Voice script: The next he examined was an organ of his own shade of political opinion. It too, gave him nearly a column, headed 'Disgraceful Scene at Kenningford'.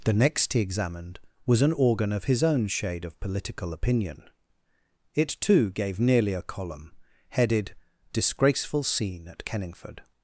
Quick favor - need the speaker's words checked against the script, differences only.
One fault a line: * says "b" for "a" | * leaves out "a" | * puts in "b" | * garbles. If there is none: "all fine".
* leaves out "him"